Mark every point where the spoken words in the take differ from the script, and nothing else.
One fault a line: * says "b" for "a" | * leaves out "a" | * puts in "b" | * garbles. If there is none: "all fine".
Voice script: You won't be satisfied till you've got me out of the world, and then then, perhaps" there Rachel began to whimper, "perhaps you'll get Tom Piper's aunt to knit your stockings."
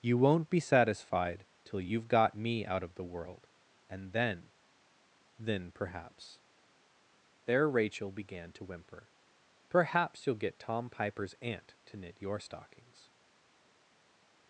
all fine